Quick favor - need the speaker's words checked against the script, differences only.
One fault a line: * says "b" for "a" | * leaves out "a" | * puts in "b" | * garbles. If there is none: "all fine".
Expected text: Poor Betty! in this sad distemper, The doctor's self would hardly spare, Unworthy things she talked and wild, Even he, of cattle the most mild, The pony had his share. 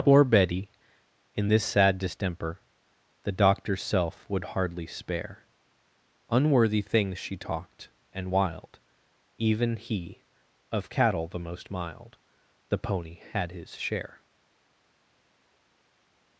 all fine